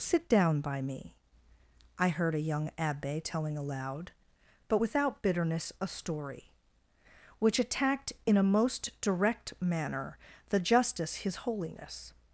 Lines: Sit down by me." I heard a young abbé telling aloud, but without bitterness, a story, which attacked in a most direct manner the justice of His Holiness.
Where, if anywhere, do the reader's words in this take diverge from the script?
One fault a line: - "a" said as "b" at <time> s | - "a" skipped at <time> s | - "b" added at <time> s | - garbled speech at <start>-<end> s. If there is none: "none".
- "of" skipped at 11.2 s